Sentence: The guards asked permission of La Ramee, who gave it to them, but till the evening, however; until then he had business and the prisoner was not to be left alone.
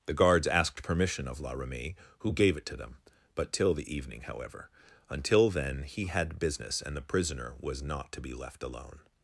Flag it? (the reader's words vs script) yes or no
no